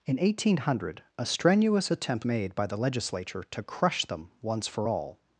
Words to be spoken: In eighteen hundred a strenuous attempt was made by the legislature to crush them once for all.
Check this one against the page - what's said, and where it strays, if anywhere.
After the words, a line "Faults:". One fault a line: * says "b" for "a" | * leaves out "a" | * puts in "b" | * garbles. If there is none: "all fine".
In eighteen hundred a strenuous attempt made by the legislature to crush them once for all.
Faults:
* leaves out "was"